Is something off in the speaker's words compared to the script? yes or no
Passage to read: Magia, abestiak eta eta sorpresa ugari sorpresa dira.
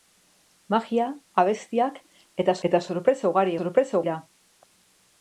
no